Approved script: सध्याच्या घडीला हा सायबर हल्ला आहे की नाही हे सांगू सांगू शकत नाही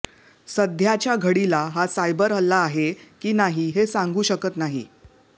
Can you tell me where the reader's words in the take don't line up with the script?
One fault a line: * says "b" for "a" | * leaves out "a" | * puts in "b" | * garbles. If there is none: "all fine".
* leaves out "सांगू"